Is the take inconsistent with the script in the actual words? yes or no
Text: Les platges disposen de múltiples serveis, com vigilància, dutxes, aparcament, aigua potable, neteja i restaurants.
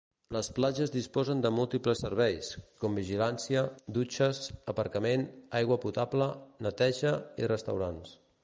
no